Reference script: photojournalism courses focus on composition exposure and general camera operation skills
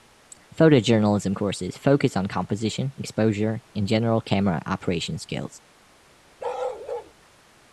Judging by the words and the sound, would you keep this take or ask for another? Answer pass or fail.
fail